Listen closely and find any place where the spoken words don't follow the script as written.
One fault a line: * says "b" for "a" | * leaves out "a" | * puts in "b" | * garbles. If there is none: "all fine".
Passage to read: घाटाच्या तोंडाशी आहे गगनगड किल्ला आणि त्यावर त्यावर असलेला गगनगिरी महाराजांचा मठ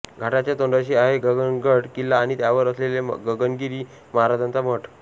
* leaves out "त्यावर"